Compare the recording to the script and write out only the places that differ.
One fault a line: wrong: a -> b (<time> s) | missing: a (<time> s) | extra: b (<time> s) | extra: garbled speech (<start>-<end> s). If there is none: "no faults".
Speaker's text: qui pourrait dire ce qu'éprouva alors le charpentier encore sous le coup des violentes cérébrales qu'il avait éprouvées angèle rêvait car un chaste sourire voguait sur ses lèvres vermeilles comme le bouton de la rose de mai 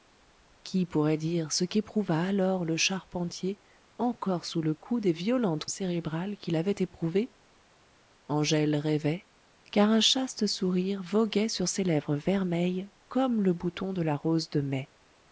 no faults